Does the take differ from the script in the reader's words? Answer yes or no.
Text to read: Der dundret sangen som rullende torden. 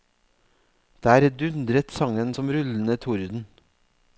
no